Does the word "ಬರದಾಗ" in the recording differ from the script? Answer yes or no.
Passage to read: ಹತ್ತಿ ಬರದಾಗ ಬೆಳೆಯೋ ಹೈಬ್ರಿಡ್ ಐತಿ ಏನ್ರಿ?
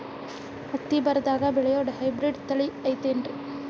no